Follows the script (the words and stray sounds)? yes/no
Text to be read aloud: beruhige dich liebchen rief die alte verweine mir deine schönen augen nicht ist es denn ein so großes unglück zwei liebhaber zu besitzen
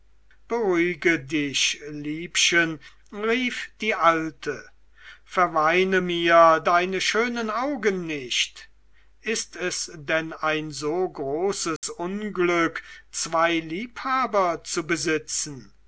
no